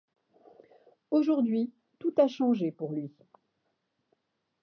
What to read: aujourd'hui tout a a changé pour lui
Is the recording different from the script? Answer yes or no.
yes